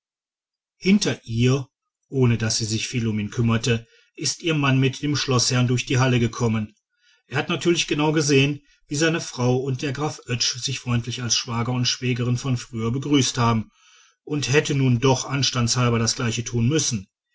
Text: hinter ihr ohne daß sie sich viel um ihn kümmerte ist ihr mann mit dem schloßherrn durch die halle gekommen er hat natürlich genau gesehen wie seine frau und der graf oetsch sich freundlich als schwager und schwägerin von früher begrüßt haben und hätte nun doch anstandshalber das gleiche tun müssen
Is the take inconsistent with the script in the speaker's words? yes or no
no